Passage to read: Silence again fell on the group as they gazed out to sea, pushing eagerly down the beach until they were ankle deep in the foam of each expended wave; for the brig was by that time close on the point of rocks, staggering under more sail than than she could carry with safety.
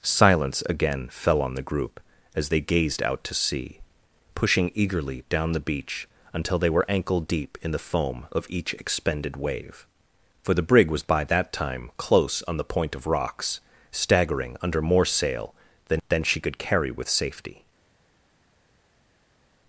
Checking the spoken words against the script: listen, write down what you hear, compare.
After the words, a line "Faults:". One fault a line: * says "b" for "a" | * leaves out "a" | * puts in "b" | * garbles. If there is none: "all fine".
Silence again fell on the group as they gazed out to sea, pushing eagerly down the beach until they were ankle deep in the foam of each expended wave; for the brig was by that time close on the point of rocks, staggering under more sail than than she could carry with safety.
Faults:
all fine